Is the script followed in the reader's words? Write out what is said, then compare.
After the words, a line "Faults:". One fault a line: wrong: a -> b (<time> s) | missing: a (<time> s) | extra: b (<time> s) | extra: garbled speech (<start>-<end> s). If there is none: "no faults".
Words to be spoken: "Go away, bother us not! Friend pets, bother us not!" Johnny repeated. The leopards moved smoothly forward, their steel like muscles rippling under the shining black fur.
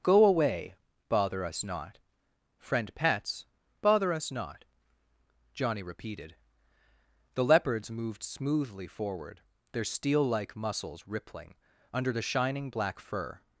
"Go away, bother us not! Friend pets, bother us not!" Johnny repeated. The leopards moved smoothly forward, their steel like muscles rippling under the shining black fur.
Faults:
no faults